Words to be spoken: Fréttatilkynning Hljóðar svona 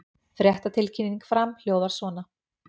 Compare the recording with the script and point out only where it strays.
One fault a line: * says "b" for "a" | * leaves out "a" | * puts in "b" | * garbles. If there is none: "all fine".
* puts in "Fram"